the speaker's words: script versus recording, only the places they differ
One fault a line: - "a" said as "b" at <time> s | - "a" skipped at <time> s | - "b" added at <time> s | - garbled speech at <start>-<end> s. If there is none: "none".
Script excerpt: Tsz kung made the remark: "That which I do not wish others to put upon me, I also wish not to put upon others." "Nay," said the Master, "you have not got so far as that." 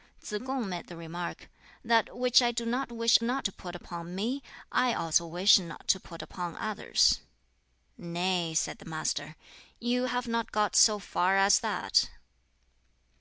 - "others" said as "not" at 3.2 s